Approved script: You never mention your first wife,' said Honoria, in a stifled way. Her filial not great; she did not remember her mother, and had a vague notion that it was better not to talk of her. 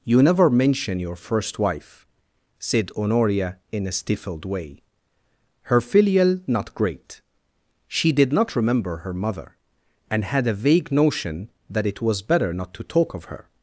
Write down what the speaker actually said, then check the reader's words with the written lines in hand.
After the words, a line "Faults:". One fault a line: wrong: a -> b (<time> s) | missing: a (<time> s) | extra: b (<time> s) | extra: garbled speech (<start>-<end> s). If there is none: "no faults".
You never mention your first wife,' said Honoria, in a stifled way. Her filial not great; she did not remember her mother, and had a vague notion that it was better not to talk of her.
Faults:
no faults